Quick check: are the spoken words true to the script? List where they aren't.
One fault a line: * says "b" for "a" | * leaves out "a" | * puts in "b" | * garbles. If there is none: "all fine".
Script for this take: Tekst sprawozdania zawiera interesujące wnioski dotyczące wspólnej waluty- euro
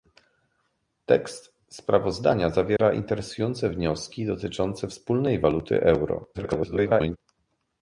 * garbles